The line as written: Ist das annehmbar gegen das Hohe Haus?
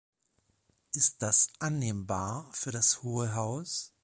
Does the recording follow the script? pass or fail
fail